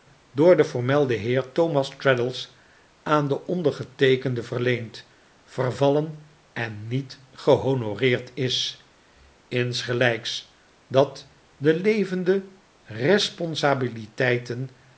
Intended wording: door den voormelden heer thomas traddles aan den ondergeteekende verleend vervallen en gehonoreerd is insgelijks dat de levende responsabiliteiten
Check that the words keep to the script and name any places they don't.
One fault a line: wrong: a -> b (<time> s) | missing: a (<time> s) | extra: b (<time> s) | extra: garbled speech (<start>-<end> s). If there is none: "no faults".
extra: niet (6.9 s)